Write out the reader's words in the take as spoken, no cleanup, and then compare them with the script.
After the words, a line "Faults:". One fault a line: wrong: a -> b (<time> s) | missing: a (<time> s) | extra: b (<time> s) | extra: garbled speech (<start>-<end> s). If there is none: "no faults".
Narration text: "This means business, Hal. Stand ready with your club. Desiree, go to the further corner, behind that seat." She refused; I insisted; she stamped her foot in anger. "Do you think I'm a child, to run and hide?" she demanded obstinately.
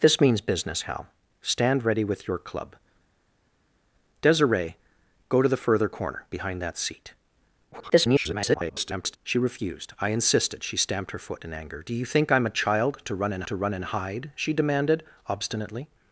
"This means business, Hal. Stand ready with your club. Desiree, go to the further corner, behind that seat." [garbled] She refused; I insisted; she stamped her foot in anger. "Do you think I'm a child, to run and to run and hide?" she demanded obstinately.
Faults:
extra: garbled speech (7.7-9.2 s)
extra: to run and (13.5 s)